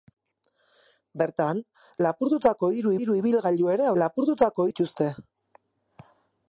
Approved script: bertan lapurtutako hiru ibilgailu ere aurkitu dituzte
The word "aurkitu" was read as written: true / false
false